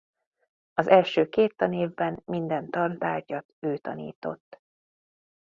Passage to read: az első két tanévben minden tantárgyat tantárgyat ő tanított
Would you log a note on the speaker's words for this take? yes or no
yes